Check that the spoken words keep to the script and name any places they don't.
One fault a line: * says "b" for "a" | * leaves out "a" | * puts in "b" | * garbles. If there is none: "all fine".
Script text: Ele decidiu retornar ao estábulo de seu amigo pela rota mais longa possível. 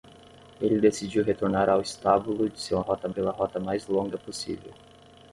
* says "rota" for "amigo"